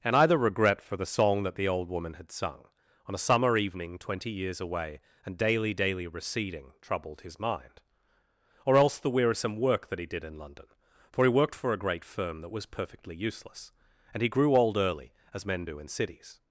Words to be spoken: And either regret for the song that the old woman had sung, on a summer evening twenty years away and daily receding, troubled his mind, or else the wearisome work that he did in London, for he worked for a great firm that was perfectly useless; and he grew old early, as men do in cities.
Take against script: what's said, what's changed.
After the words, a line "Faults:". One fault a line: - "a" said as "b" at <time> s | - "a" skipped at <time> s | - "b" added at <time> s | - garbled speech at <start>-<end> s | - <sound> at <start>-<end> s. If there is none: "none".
And either regret for the song that the old woman had sung, on a summer evening twenty years away and daily daily receding, troubled his mind, or else the wearisome work that he did in London, for he worked for a great firm that was perfectly useless; and he grew old early, as men do in cities.
Faults:
- "daily" added at 5.7 s